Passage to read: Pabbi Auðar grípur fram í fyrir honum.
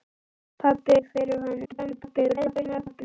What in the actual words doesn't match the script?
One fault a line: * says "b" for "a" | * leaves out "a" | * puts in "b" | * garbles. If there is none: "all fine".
* leaves out "Auðar grípur fram"
* garbles